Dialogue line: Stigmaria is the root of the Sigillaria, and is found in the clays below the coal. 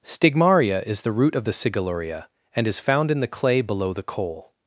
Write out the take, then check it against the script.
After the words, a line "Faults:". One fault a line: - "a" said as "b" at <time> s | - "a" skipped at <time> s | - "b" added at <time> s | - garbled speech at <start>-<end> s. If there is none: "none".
Stigmaria is the root of the Sigillaria, and is found in the clay below the coal.
Faults:
- "clays" said as "clay" at 3.3 s